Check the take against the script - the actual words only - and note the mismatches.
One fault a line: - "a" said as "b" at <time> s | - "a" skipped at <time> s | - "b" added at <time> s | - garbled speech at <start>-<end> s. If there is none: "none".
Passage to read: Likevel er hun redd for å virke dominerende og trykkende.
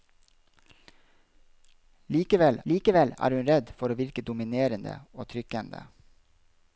- "likevel" added at 2.7 s